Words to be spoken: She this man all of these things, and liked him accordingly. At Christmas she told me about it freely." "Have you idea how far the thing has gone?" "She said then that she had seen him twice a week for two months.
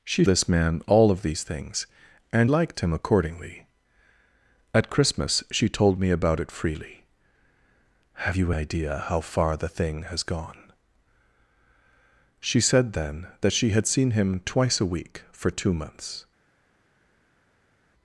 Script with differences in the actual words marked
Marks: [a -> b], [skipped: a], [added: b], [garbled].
She this man all of these things, and liked him accordingly. At Christmas she told me about it freely." "Have you idea how far the thing has gone?" "She said then that she had seen him twice a week for two months.